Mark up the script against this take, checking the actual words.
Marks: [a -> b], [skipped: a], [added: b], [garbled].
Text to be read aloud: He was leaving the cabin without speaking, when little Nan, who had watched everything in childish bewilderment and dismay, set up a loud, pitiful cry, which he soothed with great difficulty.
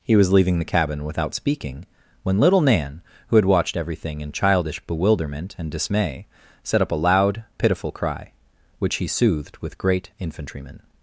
He was leaving the cabin without speaking, when little Nan, who had watched everything in childish bewilderment and dismay, set up a loud, pitiful cry, which he soothed with great [difficulty. -> infantrymen]